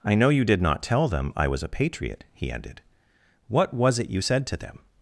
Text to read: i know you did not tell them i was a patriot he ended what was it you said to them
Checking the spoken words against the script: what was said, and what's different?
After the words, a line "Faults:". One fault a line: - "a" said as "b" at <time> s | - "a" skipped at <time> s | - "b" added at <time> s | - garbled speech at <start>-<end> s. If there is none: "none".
i know you did not tell them i was a patriot he ended what was it you said to them
Faults:
none